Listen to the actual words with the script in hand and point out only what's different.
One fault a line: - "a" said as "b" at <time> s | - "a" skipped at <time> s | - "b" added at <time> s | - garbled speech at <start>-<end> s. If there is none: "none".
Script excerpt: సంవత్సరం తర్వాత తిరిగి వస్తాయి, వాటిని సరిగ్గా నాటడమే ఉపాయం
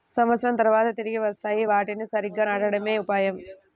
none